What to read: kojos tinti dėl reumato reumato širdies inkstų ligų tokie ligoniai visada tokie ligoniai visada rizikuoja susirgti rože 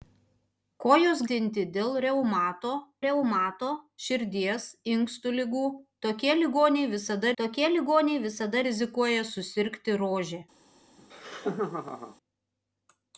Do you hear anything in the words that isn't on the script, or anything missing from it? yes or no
no